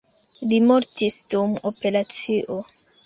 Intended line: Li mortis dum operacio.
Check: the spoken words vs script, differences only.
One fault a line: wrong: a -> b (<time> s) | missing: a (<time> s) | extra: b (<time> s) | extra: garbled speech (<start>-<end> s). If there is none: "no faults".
no faults